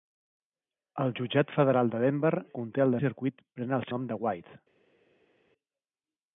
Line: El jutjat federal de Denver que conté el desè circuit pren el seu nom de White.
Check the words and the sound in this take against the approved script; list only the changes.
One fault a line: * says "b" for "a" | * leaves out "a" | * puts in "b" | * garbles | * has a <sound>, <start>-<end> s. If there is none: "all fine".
* leaves out "que"
* leaves out "desè"
* leaves out "seu"